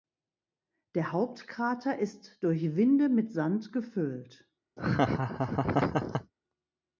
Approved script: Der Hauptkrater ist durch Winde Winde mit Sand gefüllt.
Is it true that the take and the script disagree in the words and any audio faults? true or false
true